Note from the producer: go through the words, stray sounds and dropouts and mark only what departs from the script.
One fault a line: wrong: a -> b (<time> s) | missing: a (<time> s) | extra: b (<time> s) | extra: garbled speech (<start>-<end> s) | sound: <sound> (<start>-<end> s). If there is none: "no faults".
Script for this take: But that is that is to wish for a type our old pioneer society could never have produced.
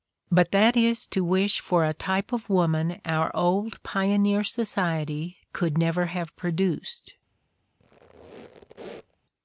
missing: that is (1.1 s)
extra: of woman (2.3 s)
sound: squeak (7.8-9.2 s)